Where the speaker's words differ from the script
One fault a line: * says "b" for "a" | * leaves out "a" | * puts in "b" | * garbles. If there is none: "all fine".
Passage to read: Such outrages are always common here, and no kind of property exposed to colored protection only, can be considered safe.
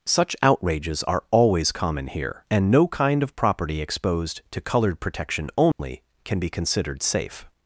all fine